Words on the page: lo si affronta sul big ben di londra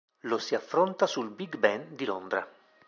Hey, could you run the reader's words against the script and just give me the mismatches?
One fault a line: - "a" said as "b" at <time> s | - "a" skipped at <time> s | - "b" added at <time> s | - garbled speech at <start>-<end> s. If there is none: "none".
none